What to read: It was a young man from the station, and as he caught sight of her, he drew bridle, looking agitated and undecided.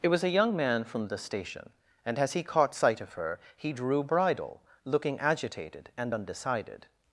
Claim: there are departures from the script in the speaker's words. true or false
false